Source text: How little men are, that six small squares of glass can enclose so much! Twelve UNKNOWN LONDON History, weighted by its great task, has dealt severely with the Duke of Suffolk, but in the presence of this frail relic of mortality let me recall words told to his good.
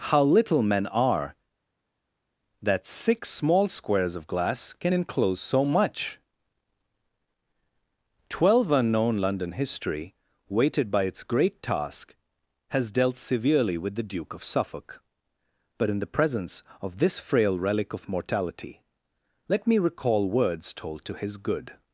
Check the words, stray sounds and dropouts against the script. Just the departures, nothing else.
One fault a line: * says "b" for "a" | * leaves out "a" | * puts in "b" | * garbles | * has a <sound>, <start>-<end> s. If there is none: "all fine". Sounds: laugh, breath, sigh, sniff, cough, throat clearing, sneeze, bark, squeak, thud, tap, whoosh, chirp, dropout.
all fine